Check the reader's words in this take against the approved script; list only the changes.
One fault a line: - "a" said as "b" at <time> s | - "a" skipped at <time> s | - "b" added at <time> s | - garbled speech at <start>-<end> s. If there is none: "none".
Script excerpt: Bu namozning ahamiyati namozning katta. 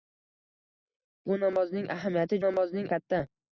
none